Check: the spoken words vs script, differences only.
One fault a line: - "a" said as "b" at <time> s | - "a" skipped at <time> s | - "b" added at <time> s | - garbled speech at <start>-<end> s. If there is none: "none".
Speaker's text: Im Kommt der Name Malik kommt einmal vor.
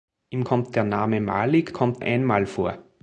none